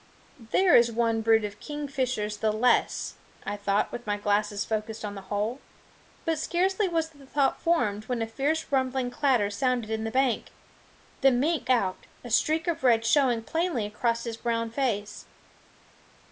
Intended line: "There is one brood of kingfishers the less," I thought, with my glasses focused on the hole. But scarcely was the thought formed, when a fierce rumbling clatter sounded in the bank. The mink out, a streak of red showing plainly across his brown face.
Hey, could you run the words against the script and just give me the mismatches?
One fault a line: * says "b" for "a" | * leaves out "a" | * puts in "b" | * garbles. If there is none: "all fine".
all fine